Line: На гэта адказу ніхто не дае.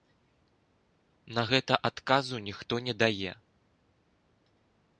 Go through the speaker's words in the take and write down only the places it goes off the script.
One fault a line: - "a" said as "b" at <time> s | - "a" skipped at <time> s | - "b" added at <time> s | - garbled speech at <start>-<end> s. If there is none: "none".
none